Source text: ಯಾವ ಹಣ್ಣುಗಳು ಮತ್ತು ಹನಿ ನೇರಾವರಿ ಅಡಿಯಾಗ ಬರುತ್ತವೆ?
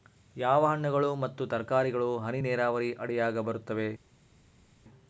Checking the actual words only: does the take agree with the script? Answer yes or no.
no